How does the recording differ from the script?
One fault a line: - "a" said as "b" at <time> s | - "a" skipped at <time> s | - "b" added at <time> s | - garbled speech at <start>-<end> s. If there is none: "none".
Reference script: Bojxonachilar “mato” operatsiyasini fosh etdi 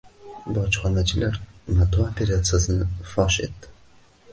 none